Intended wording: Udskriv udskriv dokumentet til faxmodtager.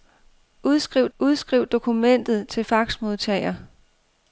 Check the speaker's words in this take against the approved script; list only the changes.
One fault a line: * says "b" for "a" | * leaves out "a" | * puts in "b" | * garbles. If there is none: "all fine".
all fine